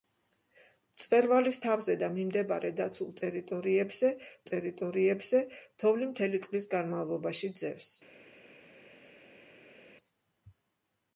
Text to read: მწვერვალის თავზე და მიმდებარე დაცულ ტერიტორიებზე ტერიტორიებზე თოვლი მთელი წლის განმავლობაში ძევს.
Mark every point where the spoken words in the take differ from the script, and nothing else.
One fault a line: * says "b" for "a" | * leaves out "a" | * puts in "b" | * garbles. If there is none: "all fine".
all fine